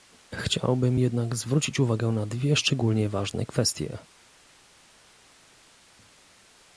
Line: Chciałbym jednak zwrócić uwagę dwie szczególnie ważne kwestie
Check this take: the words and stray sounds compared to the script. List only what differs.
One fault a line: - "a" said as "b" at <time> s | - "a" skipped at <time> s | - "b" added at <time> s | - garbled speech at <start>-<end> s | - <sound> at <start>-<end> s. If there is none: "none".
- "na" added at 2.1 s